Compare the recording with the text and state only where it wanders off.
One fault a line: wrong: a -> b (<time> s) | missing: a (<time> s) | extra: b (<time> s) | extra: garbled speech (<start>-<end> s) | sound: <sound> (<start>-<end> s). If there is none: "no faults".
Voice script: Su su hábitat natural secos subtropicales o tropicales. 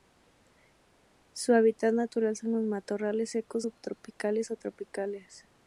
missing: su (1.5 s)
extra: son los matorrales (2.3 s)